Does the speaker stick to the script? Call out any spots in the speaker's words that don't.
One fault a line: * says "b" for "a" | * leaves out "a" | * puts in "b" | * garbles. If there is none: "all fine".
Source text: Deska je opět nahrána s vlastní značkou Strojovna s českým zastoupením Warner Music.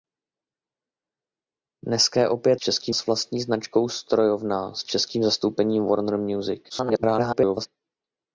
* says "českým" for "nahrána"
* garbles